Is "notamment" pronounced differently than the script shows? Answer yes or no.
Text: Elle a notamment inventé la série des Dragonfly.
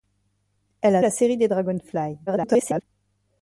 yes